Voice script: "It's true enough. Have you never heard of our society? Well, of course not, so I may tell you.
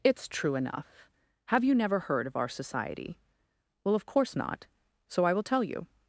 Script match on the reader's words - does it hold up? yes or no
no